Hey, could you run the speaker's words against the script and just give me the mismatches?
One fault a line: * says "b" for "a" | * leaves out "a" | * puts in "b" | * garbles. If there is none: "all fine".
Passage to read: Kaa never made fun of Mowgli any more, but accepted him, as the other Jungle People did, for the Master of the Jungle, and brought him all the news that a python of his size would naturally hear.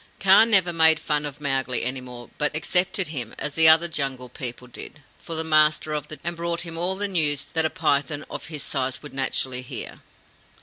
* leaves out "Jungle"